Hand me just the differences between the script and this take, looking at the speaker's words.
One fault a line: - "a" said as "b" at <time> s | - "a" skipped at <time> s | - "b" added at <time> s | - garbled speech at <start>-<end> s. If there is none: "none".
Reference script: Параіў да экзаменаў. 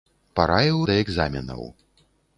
none